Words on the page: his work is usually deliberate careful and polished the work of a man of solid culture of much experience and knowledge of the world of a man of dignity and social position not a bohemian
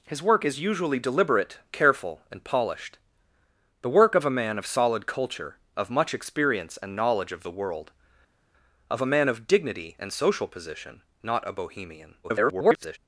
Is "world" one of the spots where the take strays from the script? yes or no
no